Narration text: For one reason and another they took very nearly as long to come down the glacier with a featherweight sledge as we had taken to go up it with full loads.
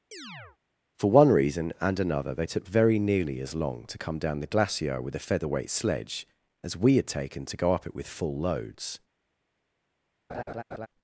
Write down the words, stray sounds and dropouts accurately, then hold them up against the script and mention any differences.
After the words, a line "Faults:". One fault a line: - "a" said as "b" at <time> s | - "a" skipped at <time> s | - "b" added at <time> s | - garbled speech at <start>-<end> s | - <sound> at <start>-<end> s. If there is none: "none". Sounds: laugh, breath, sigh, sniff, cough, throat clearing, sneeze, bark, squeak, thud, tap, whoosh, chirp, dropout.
For one reason and another they took very nearly as long to come down the glacier with a featherweight sledge as we had taken to go up it with full loads.
Faults:
- chirp at 0.1-0.6 s
- laugh at 10.3-10.9 s